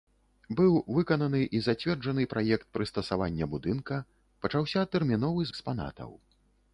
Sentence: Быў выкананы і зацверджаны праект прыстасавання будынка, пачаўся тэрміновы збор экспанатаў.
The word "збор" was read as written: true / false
false